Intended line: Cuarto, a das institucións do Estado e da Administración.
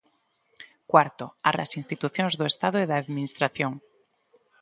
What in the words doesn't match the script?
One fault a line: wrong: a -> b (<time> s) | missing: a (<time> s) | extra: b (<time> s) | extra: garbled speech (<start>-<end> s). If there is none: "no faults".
no faults